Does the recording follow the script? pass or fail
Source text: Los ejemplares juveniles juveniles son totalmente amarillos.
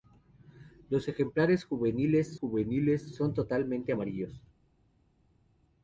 pass